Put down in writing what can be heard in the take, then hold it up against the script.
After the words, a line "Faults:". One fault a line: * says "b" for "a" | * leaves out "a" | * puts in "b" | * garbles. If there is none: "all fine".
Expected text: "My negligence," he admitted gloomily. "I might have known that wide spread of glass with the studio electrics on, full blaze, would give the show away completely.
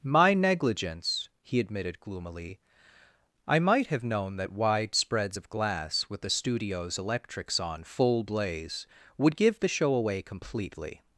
"My negligence," he admitted gloomily. "I might have known that wide spreads of glass with the studios electrics on, full blaze, would give the show away completely.
Faults:
* says "spreads" for "spread"
* says "studios" for "studio"